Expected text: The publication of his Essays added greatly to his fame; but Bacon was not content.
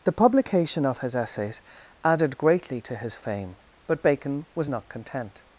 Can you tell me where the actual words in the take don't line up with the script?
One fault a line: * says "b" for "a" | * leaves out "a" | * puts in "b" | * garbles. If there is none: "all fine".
all fine